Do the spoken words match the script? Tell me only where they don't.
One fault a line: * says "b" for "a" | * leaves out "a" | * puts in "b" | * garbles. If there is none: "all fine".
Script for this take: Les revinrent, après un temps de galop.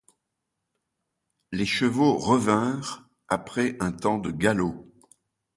* puts in "chevaux"